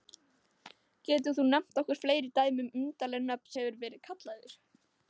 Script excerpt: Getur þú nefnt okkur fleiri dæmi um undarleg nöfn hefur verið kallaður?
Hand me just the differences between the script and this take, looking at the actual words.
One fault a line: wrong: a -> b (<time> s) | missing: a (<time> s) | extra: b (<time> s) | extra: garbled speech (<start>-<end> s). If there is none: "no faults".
no faults